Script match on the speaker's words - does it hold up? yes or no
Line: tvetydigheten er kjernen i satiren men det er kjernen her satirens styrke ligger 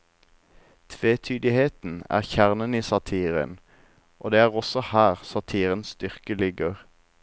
no